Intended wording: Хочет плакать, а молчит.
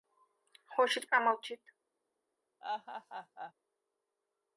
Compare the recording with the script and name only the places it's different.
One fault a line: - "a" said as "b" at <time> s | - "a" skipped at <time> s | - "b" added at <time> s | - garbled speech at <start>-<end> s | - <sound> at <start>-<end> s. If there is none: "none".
- "плакать" skipped at 1.1 s
- laugh at 2.6-3.5 s